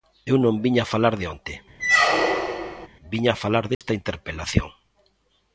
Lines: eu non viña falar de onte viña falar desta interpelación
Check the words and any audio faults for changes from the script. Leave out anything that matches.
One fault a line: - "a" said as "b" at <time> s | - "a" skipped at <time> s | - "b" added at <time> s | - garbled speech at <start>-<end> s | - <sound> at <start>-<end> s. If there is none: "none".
- squeak at 1.8-2.9 s
- dropout at 3.7-3.8 s